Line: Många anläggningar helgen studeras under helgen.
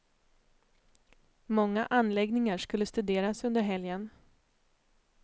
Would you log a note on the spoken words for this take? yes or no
yes